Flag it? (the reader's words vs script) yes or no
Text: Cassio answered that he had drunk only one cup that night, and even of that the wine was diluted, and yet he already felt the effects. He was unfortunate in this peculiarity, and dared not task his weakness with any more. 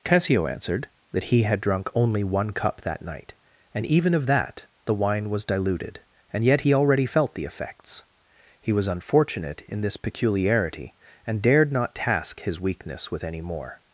no